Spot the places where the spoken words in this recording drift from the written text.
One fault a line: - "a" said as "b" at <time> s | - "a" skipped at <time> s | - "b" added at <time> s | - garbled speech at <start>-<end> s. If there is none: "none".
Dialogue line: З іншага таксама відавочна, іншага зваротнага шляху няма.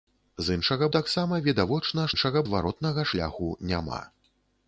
none